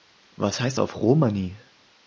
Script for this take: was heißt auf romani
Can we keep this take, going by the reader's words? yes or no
yes